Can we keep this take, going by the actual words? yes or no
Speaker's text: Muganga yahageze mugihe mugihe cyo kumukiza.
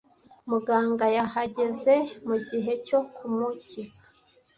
no